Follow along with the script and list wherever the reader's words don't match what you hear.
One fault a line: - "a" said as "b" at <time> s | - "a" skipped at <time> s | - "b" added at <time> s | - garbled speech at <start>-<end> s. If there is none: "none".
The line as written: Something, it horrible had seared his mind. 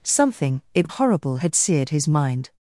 none